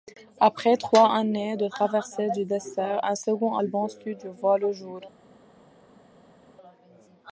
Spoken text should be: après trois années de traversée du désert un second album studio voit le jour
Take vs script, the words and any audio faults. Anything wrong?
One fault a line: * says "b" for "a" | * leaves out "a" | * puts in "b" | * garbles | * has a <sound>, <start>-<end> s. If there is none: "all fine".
all fine